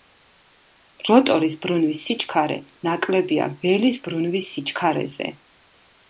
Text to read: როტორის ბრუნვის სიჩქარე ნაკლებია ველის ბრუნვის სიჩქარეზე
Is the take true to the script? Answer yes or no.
yes